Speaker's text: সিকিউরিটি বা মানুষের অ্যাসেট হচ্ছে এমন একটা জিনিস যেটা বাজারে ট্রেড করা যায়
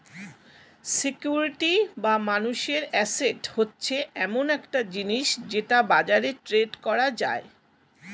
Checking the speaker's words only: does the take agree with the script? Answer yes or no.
yes